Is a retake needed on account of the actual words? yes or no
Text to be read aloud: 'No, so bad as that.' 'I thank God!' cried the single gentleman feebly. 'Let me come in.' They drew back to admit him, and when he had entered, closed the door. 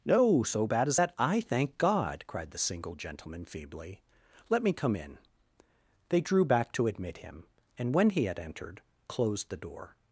no